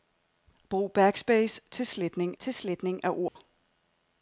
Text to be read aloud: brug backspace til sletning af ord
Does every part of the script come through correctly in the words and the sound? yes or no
no